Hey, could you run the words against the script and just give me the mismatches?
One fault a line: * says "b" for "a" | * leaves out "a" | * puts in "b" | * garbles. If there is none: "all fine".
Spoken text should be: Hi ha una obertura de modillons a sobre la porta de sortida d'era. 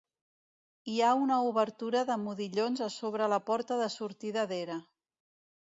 all fine